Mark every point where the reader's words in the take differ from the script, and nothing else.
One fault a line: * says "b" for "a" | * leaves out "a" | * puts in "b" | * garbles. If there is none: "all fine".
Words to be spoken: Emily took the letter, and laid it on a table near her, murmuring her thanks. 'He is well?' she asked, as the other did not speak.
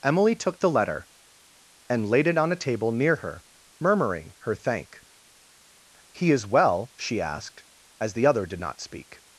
* says "thank" for "thanks"